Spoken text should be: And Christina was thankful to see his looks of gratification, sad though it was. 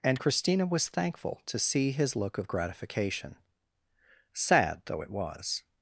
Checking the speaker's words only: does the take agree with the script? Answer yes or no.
no